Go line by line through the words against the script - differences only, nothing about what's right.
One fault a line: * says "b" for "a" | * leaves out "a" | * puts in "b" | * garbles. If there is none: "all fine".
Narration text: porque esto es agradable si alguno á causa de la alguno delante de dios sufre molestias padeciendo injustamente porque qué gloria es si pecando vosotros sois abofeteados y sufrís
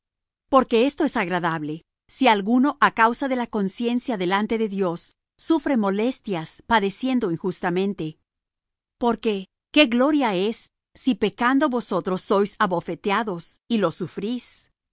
* says "conciencia" for "alguno"
* puts in "lo"